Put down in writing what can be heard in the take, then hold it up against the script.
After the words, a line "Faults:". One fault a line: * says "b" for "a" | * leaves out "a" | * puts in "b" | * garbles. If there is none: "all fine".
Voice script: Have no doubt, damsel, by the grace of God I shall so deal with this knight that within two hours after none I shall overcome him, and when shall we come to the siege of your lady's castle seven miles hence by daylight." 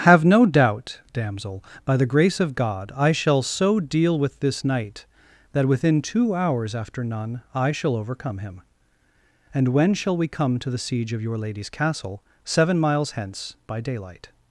Have no doubt, damsel, by the grace of God I shall so deal with this knight that within two hours after none I shall overcome him, and when shall we come to the siege of your lady's castle seven miles hence by daylight."
Faults:
all fine